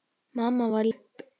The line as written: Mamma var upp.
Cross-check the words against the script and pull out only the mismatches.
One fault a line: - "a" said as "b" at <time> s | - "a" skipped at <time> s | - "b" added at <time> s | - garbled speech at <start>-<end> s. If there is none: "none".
none